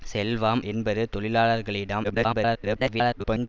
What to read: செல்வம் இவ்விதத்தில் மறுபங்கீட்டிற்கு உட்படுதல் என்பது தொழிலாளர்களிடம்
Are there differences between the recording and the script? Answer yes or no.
yes